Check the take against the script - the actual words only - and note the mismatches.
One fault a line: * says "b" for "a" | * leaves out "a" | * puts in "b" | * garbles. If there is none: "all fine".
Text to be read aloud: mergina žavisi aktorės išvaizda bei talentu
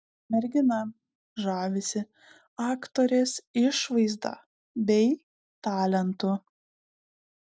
all fine